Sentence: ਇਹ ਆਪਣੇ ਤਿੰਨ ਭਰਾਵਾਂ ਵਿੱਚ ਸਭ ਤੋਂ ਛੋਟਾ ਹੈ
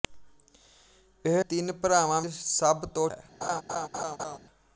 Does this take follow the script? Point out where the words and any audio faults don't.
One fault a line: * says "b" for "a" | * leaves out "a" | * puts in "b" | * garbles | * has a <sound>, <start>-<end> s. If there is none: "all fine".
* leaves out "ਆਪਣੇ"
* leaves out "ਵਿੱਚ"
* leaves out "ਛੋਟਾ"
* has a laugh, 3.4-4.4 s